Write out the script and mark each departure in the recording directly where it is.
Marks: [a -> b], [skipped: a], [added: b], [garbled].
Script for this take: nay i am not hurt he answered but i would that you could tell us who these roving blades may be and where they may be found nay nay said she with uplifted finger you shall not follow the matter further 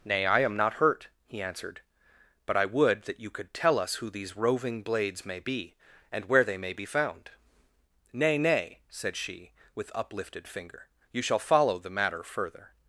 nay i am not hurt he answered but i would that you could tell us who these roving blades may be and where they may be found nay nay said she with uplifted finger you shall [skipped: not] follow the matter further